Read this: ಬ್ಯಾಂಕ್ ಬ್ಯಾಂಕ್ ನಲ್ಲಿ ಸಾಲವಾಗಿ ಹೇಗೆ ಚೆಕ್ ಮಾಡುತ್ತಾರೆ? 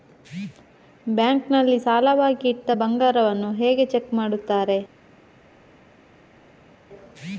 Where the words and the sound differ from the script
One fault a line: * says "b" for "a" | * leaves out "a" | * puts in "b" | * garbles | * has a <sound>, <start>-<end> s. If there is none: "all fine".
* leaves out "ಬ್ಯಾಂಕ್"
* puts in "ಇಟ್ಟ ಬಂಗಾರವನ್ನು"